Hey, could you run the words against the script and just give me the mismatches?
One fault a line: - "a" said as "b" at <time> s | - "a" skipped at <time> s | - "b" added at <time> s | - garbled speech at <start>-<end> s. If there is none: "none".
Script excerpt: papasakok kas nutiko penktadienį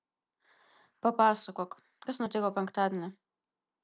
none